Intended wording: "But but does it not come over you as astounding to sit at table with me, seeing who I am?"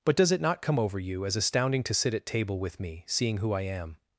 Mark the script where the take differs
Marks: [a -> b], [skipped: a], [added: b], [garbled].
"But [skipped: but] does it not come over you as astounding to sit at table with me, seeing who I am?"